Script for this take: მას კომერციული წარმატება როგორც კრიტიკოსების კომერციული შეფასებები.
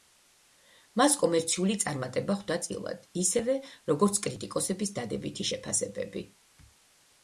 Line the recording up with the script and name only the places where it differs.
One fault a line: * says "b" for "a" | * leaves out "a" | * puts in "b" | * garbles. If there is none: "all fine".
* puts in "ხვდა წილად ისევე"
* says "დადებითი" for "კომერციული"